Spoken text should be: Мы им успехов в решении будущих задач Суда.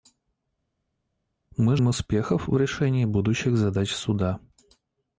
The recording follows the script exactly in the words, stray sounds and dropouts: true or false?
true